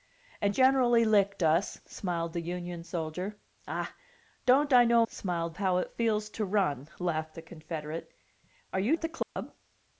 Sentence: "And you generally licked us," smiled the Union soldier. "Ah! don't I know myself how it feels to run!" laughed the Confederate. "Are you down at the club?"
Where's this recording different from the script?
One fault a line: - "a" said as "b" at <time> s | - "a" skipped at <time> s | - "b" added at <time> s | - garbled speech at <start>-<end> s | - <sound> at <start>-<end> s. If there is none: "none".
- "you" skipped at 0.6 s
- "myself" said as "smiled" at 5.1 s
- "down" skipped at 9.0 s
- dropout at 9.2-9.4 s